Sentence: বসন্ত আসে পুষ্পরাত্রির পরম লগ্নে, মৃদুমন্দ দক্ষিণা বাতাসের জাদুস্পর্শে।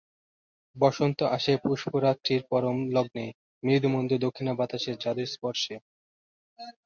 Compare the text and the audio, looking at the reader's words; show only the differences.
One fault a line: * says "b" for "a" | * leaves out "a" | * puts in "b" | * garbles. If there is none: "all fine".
all fine